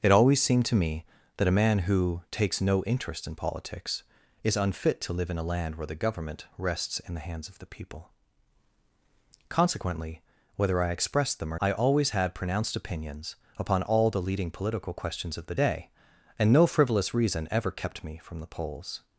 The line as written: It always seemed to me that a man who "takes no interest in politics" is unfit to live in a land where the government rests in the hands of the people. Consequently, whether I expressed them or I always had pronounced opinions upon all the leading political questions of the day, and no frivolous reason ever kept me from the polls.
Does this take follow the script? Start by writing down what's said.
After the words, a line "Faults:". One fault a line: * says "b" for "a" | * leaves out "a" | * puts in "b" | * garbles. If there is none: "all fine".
It always seemed to me that a man who "takes no interest in politics" is unfit to live in a land where the government rests in the hands of the people. Consequently, whether I expressed them or I always had pronounced opinions upon all the leading political questions of the day, and no frivolous reason ever kept me from the polls.
Faults:
all fine